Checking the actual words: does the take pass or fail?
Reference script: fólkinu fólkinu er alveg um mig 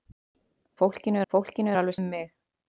pass